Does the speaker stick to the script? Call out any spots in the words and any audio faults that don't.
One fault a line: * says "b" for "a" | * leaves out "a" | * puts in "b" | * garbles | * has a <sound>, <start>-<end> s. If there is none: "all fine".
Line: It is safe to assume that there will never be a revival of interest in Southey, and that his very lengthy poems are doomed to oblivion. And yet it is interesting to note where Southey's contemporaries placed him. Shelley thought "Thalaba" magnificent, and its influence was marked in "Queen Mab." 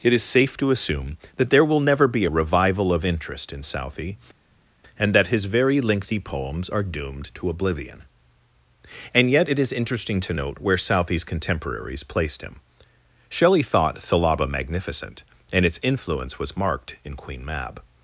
all fine